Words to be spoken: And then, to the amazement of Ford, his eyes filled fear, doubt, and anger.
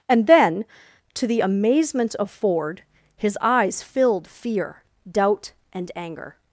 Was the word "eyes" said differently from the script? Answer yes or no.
no